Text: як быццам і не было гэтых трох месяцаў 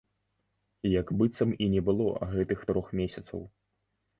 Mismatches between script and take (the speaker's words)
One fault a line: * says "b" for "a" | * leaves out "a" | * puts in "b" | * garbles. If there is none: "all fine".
all fine